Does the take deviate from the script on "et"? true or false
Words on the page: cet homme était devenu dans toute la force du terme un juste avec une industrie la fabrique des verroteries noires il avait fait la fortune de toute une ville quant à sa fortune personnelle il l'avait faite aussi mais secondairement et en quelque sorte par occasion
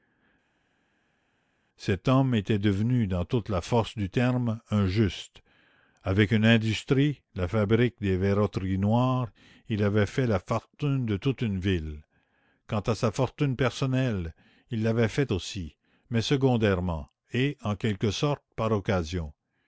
false